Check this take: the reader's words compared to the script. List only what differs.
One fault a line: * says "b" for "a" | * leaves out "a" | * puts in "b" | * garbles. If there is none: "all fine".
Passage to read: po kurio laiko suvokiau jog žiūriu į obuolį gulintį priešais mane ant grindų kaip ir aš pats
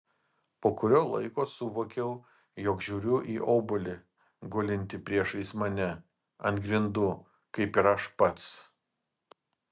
all fine